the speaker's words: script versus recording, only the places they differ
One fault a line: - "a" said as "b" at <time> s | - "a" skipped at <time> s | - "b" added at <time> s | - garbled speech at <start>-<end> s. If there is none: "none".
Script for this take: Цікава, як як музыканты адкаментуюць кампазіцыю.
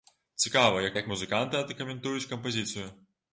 none